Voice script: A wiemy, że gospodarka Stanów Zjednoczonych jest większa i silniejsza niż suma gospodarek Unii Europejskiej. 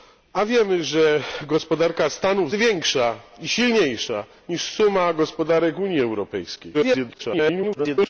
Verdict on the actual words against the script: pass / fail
fail